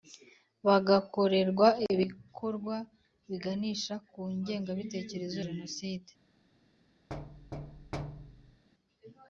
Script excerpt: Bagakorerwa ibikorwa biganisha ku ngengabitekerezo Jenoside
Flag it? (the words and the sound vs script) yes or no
yes